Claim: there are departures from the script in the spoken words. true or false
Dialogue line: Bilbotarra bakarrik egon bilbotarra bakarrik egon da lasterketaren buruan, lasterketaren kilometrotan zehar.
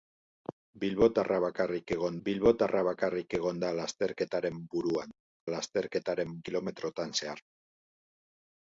false